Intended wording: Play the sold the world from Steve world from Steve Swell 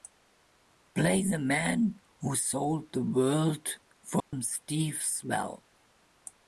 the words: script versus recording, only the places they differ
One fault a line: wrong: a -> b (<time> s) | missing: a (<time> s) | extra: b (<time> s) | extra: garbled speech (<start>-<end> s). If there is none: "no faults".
extra: man who (1.4 s)
missing: world from Steve (5.0 s)